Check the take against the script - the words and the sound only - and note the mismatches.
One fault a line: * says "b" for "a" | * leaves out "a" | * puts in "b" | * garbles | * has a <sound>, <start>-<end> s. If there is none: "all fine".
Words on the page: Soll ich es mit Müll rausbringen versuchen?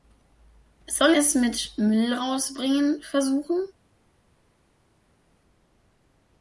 * leaves out "ich"